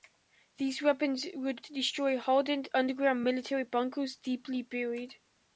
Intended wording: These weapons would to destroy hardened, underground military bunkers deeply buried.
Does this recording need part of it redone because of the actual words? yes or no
no